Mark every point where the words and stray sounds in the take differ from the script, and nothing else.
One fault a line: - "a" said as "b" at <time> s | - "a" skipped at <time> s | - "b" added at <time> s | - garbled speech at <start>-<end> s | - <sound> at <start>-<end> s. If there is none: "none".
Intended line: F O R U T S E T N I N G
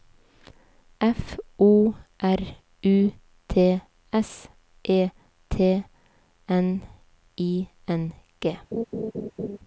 - laugh at 8.7-9.6 s